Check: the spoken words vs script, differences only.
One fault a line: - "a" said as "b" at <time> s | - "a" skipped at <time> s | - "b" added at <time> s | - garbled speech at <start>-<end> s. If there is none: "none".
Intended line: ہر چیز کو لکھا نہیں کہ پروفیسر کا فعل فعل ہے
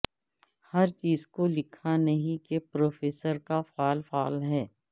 none